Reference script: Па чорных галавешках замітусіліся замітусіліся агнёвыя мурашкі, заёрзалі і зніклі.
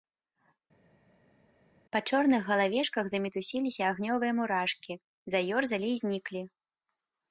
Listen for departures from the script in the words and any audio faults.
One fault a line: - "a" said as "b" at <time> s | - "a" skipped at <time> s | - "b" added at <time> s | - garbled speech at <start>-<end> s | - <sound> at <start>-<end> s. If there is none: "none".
- "замітусіліся" skipped at 3.8 s